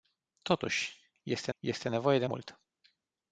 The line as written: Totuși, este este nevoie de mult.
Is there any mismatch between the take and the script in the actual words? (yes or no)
no